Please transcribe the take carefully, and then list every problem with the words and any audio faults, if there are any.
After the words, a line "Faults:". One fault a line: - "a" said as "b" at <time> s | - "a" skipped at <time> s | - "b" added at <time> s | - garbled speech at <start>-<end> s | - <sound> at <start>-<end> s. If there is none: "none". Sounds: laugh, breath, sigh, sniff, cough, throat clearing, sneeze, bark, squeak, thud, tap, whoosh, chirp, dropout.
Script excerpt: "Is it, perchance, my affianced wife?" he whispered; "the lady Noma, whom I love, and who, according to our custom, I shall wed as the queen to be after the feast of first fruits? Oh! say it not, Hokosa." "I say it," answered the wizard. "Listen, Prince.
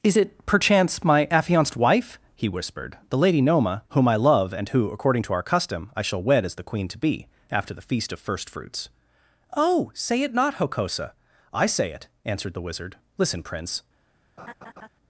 "Is it, perchance, my affianced wife?" he whispered; "the lady Noma, whom I love, and who, according to our custom, I shall wed as the queen to be after the feast of first fruits? Oh! say it not, Hokosa." "I say it," answered the wizard. "Listen, Prince.
Faults:
- laugh at 14.4-14.9 s